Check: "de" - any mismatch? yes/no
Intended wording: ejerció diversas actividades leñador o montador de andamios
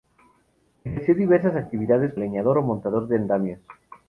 no